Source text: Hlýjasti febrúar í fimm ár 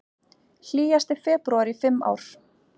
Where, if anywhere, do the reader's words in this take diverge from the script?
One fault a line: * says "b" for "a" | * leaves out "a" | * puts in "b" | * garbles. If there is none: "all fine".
all fine